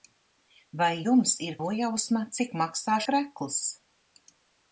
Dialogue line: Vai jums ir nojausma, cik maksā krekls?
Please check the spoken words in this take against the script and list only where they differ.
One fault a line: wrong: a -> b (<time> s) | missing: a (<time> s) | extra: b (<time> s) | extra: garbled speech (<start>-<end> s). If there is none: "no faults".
no faults